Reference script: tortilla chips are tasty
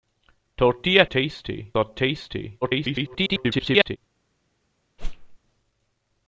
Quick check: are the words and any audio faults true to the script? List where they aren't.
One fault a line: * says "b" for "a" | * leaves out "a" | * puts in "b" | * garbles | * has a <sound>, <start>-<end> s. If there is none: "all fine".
* says "tasty" for "chips"
* garbles
* has a whoosh, 5.0-5.4 s